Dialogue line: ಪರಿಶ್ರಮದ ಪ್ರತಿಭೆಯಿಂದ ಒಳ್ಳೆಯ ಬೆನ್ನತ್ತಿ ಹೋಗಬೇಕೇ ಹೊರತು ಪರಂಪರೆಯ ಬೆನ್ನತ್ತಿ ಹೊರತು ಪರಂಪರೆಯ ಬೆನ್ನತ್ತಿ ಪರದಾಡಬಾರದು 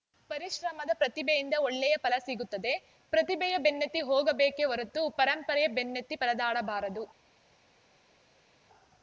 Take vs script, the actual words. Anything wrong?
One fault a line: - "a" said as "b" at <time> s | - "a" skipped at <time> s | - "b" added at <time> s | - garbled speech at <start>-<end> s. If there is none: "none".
- "ಬೆನ್ನತ್ತಿ ಹೋಗಬೇಕೇ ಹೊರತು ಪರಂಪರೆಯ ಬೆನ್ನತ್ತಿ" said as "ಫಲ ಸಿಗುತ್ತದೆ ಪ್ರತಿಭೆಯ ಬೆನ್ನತ್ತಿ ಹೋಗಬೇಕೇ" at 2.0 s